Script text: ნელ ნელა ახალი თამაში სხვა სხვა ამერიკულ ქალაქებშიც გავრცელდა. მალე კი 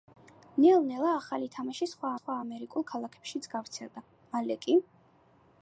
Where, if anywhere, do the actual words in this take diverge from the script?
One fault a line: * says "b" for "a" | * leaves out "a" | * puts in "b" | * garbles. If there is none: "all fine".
all fine